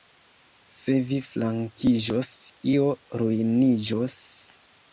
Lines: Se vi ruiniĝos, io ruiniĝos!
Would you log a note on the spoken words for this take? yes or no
yes